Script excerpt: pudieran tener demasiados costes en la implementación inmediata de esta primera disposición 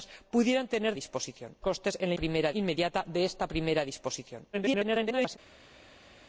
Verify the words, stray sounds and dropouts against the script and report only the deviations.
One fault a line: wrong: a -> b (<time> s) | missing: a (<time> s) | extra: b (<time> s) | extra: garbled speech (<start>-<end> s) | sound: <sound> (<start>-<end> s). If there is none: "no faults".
wrong: demasiados -> disposición (0.9 s)
wrong: implementación -> primera (2.1 s)
extra: garbled speech (4.5-5.4 s)